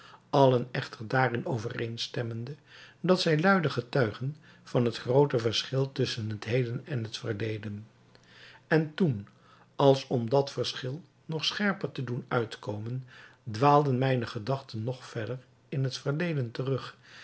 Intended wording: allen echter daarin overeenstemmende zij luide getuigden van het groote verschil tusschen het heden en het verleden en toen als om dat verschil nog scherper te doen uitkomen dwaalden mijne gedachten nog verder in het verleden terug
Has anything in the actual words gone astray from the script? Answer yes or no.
yes